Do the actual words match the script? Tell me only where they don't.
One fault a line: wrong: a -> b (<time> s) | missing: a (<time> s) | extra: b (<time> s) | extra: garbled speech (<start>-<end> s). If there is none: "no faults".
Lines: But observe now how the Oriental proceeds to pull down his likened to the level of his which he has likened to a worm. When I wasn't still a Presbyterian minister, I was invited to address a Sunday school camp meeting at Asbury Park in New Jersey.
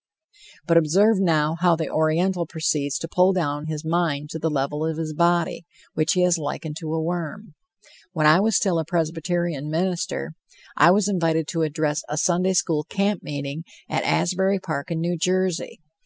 wrong: likened -> mind (3.8 s)
extra: body (5.1 s)
wrong: wasn't -> was (8.4 s)